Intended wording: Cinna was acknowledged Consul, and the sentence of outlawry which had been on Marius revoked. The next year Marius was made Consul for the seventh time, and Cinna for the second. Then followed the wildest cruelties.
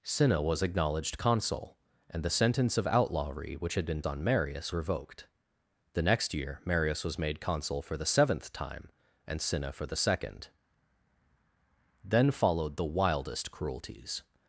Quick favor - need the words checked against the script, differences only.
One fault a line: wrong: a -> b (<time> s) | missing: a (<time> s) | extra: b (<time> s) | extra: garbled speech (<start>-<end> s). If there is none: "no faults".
no faults